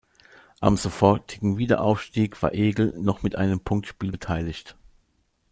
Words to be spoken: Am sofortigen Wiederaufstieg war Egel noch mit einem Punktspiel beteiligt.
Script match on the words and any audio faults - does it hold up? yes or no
yes